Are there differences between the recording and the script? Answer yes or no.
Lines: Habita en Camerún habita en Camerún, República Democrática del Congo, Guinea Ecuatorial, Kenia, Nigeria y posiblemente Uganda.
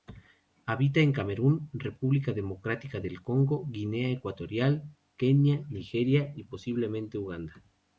yes